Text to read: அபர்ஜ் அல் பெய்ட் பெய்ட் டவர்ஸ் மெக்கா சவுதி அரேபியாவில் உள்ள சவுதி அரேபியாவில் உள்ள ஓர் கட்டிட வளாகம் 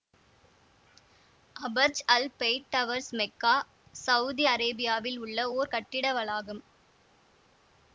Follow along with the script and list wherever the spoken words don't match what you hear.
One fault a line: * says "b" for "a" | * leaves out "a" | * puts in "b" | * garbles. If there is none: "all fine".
* leaves out "பெய்ட்"
* leaves out "சவுதி அரேபியாவில் உள்ள"